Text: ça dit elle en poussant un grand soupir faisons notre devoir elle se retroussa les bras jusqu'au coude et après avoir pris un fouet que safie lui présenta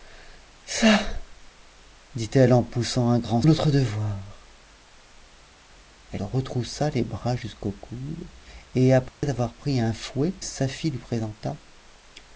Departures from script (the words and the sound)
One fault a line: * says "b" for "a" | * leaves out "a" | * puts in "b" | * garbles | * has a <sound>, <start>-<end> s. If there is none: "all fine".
* leaves out "soupir faisons"
* leaves out "se"
* has a dropout, 9.1-9.2 s
* leaves out "que"